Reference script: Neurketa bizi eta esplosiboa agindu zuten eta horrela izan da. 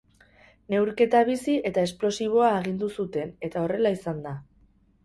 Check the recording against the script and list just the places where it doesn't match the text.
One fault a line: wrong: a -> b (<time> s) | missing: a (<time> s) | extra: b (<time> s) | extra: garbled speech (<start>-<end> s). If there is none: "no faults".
no faults